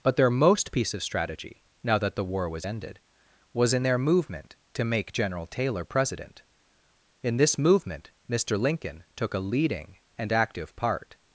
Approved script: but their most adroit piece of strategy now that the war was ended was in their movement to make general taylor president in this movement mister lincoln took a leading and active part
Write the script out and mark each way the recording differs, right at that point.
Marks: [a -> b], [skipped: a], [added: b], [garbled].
but their most [skipped: adroit] piece of strategy now that the war was ended was in their movement to make general taylor president in this movement mister lincoln took a leading and active part